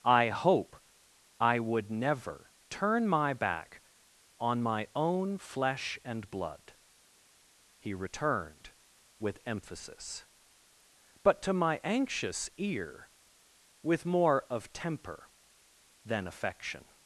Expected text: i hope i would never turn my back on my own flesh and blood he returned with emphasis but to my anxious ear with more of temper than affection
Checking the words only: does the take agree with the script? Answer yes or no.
yes